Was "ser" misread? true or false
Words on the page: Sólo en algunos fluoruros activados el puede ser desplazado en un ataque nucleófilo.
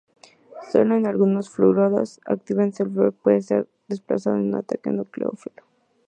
false